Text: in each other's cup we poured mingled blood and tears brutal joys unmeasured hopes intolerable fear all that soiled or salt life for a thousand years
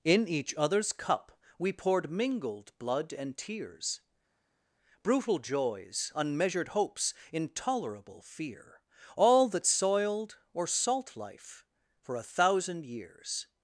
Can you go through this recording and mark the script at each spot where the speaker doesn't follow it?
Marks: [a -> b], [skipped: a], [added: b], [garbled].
in each other's cup we poured mingled blood and tears brutal joys unmeasured hopes intolerable fear all that soiled or salt life for a thousand years